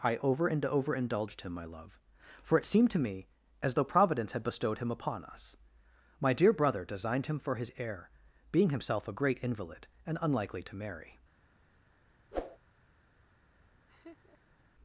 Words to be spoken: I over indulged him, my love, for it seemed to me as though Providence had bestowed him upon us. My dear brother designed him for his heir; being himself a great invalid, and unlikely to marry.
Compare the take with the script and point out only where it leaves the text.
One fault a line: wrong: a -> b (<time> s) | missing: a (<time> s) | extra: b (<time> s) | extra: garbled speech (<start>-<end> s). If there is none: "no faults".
extra: and over (0.5 s)